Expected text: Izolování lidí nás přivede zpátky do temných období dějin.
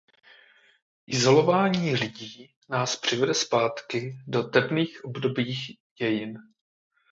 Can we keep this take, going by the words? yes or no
yes